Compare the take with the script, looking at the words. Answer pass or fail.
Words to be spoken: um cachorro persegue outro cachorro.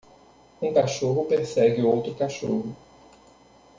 pass